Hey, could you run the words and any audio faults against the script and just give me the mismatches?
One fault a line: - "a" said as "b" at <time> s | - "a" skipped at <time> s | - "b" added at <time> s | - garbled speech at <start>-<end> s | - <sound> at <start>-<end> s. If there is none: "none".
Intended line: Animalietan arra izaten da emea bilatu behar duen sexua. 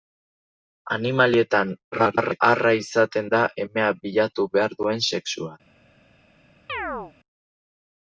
- garbled speech at 1.9-2.4 s
- chirp at 6.7-7.1 s